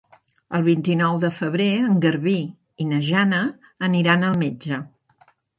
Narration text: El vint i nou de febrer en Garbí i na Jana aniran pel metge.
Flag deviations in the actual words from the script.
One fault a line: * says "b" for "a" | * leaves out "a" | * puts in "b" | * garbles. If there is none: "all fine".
* says "al" for "pel"